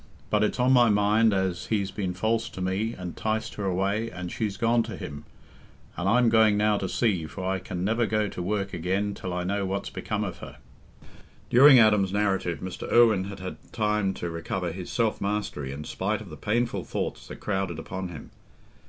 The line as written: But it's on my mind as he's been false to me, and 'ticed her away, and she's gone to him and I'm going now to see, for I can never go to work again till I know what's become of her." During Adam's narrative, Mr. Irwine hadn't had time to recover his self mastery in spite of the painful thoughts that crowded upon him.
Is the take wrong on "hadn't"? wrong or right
wrong